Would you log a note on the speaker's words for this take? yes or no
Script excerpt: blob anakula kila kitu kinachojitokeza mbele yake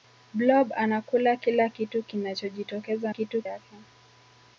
yes